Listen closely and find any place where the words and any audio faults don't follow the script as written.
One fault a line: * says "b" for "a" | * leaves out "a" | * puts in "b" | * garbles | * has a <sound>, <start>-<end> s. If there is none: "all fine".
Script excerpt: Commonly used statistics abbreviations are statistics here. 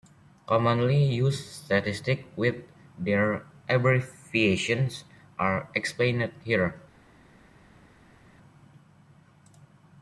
* puts in "with their"
* says "explained" for "statistics"